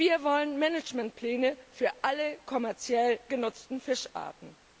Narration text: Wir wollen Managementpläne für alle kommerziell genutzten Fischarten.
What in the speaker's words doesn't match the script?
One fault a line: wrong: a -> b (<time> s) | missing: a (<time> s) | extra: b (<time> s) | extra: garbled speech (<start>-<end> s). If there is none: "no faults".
no faults